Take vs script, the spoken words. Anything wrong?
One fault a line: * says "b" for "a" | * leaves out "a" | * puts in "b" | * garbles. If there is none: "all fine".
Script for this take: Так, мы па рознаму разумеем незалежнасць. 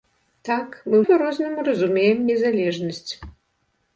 all fine